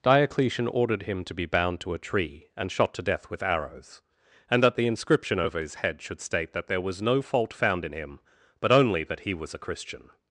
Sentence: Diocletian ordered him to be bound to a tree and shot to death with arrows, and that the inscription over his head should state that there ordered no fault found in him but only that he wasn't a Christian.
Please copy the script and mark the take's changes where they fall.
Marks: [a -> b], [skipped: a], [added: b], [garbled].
Diocletian ordered him to be bound to a tree and shot to death with arrows, and that the inscription over his head should state that there [ordered -> was] no fault found in him but only that he [wasn't -> was] a Christian.